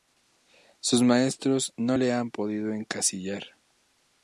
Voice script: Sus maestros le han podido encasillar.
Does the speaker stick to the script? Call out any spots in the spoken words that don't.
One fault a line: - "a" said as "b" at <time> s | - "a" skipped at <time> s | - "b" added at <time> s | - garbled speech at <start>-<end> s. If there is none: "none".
- "no" added at 1.8 s